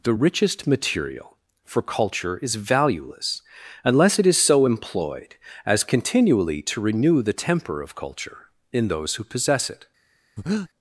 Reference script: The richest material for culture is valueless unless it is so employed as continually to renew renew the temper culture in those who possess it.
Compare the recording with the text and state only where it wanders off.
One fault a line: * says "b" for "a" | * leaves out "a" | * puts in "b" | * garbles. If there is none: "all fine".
* leaves out "renew"
* puts in "of"